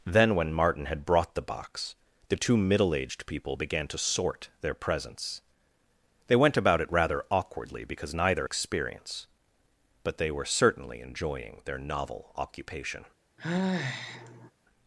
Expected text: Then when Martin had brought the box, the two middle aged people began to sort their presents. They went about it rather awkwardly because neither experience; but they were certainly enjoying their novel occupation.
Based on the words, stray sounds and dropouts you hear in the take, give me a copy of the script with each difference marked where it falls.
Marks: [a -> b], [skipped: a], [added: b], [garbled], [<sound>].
Then when Martin had brought the box, the two middle aged people began to sort their presents. They went about it rather awkwardly because neither experience; but they were certainly enjoying their novel occupation. [sigh]